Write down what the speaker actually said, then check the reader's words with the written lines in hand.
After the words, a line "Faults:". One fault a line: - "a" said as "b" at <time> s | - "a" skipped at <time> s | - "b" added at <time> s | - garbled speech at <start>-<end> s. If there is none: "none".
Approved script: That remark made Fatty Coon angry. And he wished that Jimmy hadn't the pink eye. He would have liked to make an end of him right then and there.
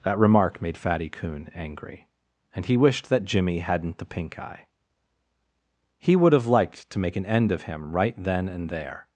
That remark made Fatty Coon angry. And he wished that Jimmy hadn't the pink eye. He would have liked to make an end of him right then and there.
Faults:
none